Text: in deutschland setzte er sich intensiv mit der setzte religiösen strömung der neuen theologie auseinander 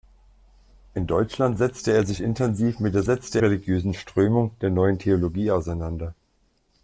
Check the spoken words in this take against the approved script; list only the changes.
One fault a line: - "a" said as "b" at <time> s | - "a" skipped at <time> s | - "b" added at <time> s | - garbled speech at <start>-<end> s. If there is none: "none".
none